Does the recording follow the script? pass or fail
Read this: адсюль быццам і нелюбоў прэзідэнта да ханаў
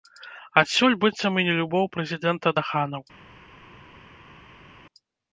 pass